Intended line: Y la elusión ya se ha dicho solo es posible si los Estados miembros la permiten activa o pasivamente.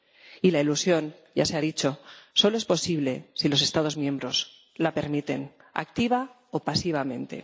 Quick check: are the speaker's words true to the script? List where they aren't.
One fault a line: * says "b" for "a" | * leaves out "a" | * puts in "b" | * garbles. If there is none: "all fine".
all fine